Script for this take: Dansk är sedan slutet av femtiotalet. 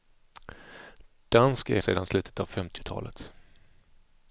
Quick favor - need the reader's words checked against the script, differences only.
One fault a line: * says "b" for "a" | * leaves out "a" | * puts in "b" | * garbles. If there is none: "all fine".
all fine